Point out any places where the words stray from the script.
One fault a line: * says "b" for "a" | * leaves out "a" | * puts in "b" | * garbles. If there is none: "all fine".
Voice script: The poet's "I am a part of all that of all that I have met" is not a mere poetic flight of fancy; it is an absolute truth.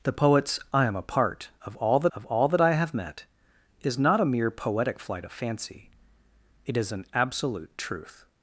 all fine